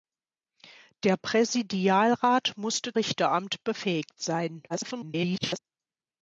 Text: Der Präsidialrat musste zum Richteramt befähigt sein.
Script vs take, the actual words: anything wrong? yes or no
yes